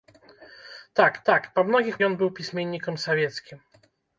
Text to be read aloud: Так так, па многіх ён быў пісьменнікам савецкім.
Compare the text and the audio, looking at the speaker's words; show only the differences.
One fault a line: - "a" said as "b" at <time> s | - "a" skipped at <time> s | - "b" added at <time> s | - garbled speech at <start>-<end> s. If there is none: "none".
none